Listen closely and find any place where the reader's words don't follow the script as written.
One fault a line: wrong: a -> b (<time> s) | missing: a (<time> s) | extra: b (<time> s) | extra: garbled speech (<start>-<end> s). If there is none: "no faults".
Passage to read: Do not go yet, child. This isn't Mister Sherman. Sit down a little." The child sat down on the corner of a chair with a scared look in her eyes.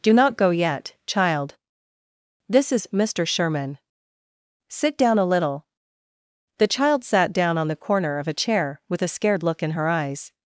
wrong: isn't -> is (2.7 s)